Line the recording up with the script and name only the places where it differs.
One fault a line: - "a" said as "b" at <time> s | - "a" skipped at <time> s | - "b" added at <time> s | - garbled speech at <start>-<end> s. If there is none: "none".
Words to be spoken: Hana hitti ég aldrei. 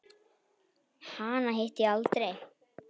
none